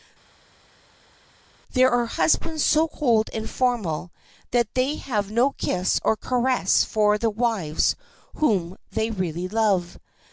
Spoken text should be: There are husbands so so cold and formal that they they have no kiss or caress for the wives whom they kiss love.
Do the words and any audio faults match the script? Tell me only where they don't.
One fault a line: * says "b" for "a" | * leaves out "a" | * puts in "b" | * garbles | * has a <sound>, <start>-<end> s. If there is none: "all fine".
* leaves out "so"
* leaves out "they"
* says "really" for "kiss"